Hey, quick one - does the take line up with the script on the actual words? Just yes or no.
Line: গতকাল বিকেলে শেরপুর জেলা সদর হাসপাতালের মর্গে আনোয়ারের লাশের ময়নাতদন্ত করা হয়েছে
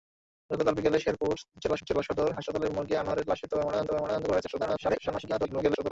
no